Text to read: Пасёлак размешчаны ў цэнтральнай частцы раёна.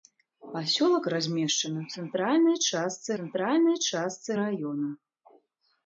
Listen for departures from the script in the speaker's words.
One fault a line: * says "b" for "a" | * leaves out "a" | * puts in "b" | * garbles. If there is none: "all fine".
* puts in "цэнтральнай частцы"